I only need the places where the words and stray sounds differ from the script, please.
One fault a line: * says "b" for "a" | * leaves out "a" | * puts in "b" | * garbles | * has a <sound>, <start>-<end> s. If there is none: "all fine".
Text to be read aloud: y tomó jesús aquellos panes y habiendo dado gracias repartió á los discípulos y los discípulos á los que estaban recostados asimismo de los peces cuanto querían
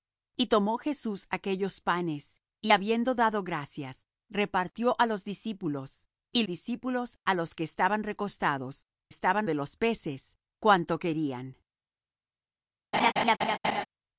* leaves out "los"
* says "estaban" for "asimismo"
* has a laugh, 12.9-13.9 s